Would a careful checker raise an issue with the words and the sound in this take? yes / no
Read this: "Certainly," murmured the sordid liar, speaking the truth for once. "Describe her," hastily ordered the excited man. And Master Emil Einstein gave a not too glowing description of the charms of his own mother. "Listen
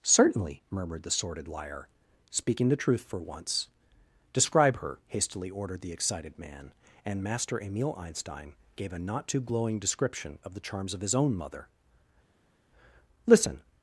no